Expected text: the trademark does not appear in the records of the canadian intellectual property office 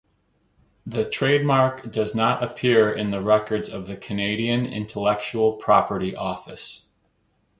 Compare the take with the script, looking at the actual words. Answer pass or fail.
pass